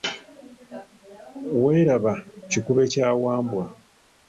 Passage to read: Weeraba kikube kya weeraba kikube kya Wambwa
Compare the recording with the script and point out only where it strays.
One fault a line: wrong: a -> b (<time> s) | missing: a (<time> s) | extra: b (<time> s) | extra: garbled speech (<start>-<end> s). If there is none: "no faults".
missing: weeraba kikube kya (3.1 s)